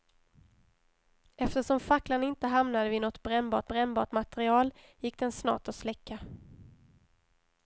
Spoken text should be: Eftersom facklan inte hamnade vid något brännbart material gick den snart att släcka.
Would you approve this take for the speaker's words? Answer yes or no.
no